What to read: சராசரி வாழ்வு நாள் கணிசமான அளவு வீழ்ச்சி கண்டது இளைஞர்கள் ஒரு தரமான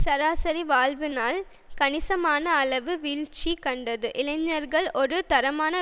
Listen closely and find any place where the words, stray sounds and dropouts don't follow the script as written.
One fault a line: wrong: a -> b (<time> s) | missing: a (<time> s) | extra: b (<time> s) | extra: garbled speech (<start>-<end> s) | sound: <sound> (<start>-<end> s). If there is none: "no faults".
no faults